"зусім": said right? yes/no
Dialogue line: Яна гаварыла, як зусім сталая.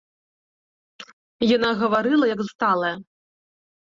no